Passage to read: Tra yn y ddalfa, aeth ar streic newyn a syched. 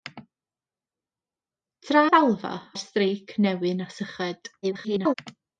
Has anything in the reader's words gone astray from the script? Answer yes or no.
yes